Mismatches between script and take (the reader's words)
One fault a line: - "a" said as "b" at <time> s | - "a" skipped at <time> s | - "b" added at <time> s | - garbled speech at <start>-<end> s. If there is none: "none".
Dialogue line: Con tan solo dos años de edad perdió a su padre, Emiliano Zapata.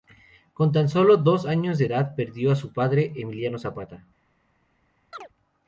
none